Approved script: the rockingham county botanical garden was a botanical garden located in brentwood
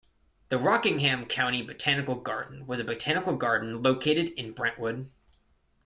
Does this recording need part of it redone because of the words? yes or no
no